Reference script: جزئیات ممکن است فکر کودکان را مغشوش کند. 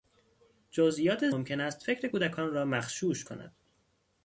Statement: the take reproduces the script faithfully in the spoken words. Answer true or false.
true